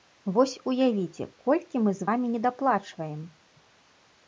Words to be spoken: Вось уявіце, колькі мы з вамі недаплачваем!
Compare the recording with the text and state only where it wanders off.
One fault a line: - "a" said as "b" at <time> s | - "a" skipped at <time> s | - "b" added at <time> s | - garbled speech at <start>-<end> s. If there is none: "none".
none